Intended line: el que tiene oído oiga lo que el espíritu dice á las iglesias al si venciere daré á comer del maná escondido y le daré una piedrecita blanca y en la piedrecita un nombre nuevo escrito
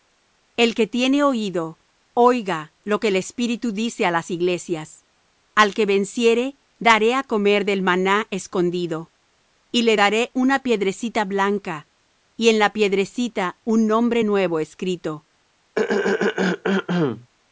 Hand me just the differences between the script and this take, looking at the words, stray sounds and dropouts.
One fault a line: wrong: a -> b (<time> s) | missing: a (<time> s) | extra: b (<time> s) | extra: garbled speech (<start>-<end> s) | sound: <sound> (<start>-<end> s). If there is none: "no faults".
wrong: si -> que (5.7 s)
sound: throat clearing (15.8-17.3 s)